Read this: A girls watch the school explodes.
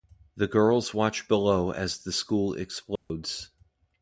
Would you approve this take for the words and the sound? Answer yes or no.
no